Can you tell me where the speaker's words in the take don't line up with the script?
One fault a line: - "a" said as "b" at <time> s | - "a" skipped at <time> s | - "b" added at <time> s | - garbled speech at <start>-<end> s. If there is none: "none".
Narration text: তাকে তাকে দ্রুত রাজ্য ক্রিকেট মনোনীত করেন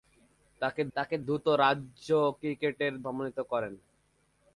none